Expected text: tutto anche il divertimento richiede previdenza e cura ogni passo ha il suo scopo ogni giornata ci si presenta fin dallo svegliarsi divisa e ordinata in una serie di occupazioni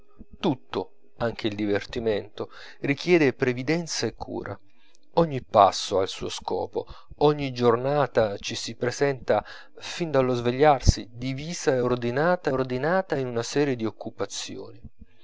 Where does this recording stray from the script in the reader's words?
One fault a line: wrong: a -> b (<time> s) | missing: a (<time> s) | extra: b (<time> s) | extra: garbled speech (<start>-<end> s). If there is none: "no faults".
extra: ordinata (12.5 s)